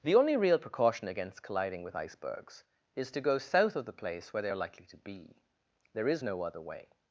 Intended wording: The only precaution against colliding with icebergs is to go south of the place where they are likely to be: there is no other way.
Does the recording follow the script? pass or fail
fail